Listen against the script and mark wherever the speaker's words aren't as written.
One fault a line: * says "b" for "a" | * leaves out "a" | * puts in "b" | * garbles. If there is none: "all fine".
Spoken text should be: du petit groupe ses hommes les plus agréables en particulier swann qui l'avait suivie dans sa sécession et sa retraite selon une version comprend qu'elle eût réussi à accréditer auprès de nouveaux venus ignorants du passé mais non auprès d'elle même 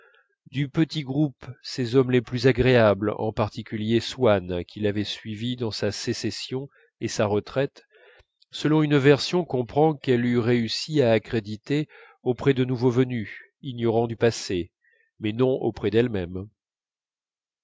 all fine